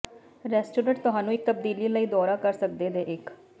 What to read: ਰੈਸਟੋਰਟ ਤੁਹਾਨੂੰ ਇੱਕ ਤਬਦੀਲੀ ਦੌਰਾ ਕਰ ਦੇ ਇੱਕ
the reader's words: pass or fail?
fail